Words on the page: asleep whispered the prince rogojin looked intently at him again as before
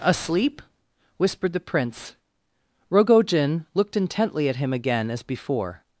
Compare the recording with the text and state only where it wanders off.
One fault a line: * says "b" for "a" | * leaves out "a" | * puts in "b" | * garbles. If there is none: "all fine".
all fine